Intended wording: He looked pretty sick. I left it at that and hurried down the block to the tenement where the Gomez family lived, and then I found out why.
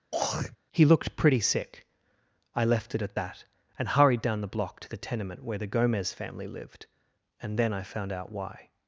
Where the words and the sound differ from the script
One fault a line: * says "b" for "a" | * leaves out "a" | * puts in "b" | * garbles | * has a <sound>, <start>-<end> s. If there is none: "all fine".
* has a throat clearing, 0.1-0.6 s